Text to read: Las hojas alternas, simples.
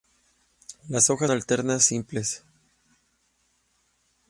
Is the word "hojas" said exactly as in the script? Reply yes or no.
yes